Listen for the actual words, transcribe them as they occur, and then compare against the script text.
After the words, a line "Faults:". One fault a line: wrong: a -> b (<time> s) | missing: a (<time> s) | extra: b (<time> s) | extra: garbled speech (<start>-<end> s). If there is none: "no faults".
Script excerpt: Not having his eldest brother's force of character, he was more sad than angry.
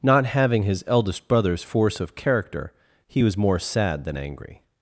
Not having his eldest brother's force of character, he was more sad than angry.
Faults:
no faults